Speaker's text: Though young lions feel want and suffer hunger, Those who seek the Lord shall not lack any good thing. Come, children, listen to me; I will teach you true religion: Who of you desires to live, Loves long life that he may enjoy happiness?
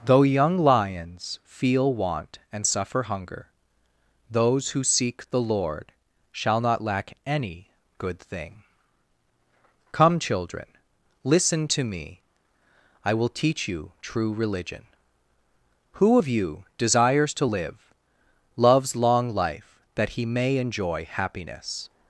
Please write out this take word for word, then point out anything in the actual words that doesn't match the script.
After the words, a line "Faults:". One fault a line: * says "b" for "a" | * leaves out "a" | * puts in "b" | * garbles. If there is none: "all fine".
Though young lions feel want and suffer hunger, Those who seek the Lord shall not lack any good thing. Come, children, listen to me; I will teach you true religion: Who of you desires to live, Loves long life that he may enjoy happiness?
Faults:
all fine